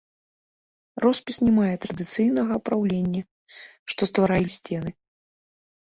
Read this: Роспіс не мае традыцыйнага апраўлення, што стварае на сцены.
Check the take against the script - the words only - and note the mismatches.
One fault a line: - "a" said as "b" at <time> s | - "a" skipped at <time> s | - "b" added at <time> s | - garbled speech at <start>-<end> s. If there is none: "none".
none